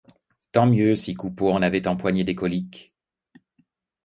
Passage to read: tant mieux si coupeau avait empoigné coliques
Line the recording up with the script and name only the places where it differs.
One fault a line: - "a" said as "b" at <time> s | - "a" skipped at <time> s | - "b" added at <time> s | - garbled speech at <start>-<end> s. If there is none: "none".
- "en" added at 1.5 s
- "des" added at 2.2 s